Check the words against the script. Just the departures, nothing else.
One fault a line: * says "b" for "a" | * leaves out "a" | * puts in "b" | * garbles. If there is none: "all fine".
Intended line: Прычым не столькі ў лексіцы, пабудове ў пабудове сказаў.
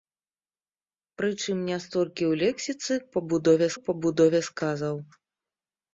all fine